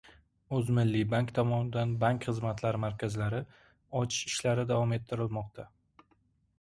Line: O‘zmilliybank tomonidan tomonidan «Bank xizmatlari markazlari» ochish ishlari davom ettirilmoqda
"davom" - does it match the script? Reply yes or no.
yes